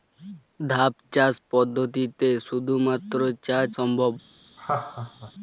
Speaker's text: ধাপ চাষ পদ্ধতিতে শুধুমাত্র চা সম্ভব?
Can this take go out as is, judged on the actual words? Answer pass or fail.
pass